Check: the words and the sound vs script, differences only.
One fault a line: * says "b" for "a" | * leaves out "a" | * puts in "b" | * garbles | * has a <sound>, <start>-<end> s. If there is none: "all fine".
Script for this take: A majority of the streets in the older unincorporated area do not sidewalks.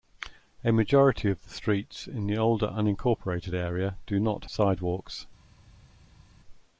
all fine